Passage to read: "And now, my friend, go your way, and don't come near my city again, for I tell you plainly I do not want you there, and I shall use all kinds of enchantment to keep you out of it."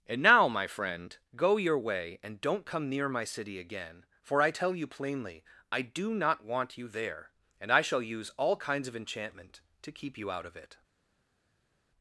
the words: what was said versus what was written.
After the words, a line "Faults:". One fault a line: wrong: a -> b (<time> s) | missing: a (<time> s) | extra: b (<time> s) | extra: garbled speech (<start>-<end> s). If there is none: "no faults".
"And now, my friend, go your way, and don't come near my city again, for I tell you plainly I do not want you there, and I shall use all kinds of enchantment to keep you out of it."
Faults:
no faults